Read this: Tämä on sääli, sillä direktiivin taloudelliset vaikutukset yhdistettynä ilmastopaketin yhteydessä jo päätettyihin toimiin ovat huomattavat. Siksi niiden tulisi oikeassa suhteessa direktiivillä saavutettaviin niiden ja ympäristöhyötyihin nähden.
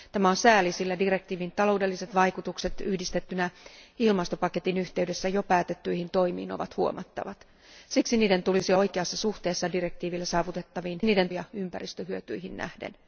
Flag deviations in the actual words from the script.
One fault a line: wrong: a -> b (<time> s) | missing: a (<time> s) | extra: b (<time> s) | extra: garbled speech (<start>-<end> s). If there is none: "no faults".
no faults